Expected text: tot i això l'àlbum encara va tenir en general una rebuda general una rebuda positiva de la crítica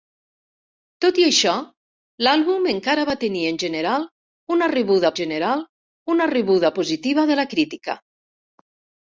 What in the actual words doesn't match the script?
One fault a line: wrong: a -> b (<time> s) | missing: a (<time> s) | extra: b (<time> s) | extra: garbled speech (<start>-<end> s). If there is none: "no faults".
no faults